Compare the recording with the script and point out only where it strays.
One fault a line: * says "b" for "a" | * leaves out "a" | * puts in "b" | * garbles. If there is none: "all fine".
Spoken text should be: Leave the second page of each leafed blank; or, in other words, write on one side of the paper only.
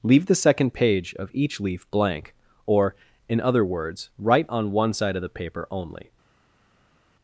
* says "leaf" for "leafed"